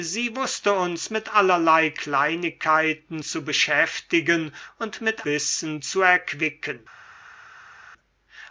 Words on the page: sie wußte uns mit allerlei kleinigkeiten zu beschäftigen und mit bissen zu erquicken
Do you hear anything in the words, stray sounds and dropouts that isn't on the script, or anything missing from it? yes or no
no